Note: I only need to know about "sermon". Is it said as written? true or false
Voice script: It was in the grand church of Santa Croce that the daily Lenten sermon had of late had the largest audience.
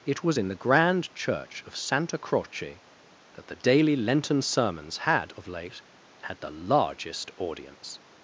false